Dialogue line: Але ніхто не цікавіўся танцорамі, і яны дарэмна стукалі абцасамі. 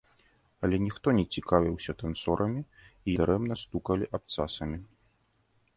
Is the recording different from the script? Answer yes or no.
yes